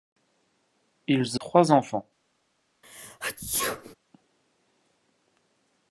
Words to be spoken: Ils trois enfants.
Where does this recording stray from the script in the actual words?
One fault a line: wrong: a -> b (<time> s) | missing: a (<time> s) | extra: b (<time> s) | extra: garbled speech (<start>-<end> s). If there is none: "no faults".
no faults